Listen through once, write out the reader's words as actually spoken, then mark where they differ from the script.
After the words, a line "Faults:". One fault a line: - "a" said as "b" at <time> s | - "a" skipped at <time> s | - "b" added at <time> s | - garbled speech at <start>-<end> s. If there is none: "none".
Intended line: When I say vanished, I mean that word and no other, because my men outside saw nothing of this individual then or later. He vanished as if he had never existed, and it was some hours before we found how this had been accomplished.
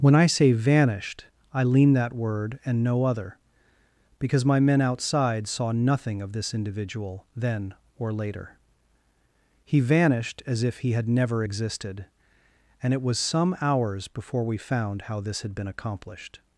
When I say vanished, I lean that word and no other, because my men outside saw nothing of this individual then or later. He vanished as if he had never existed, and it was some hours before we found how this had been accomplished.
Faults:
- "mean" said as "lean" at 1.6 s